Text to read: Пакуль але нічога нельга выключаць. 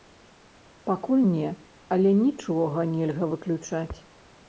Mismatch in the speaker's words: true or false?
true